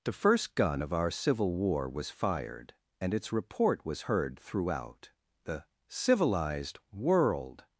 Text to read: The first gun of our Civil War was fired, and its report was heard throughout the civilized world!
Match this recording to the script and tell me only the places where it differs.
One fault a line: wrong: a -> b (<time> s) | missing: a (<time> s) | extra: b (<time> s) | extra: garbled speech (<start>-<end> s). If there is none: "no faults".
no faults